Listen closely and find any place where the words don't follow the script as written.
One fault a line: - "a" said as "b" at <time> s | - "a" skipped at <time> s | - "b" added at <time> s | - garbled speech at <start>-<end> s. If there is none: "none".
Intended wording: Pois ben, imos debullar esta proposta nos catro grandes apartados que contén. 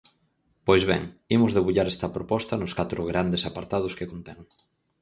none